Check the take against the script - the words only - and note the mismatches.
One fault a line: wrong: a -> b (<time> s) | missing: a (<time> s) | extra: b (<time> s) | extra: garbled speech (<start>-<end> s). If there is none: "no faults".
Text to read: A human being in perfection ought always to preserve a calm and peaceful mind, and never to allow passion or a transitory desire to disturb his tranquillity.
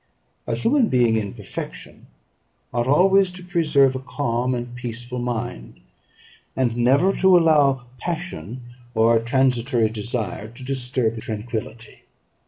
missing: his (11.2 s)